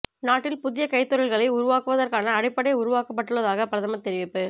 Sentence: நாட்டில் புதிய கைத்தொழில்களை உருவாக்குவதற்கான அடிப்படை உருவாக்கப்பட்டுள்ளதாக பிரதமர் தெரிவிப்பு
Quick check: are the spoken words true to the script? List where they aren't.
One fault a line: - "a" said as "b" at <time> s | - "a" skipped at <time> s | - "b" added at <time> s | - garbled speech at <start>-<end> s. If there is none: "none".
none